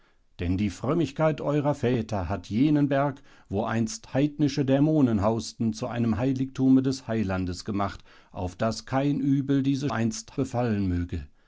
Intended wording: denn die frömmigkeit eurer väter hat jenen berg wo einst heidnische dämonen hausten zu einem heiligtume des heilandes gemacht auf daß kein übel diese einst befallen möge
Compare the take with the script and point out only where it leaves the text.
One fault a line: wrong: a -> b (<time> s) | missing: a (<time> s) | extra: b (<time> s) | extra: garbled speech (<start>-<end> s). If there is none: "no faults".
no faults